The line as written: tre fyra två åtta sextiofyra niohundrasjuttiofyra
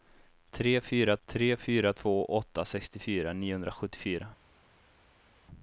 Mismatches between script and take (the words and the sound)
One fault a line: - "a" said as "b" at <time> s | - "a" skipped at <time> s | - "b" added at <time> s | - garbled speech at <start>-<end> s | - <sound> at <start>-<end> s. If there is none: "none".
- "tre fyra" added at 1.2 s